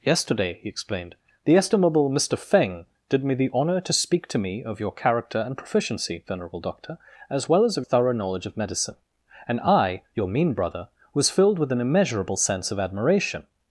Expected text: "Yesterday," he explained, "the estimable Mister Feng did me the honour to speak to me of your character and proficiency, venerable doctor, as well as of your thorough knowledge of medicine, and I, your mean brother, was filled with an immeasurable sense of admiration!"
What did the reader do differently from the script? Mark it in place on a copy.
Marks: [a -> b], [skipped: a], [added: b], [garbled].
"Yesterday," he explained, "the estimable Mister Feng did me the honour to speak to me of your character and proficiency, venerable doctor, as well as of [skipped: your] thorough knowledge of medicine, and I, your mean brother, was filled with an immeasurable sense of admiration!"